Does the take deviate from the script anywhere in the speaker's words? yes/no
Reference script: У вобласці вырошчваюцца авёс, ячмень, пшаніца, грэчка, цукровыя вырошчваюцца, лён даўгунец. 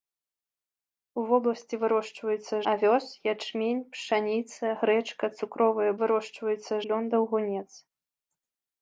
no